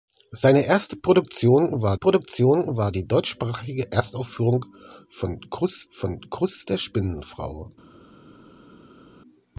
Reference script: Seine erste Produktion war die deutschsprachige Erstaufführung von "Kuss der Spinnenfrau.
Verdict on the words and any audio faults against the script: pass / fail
fail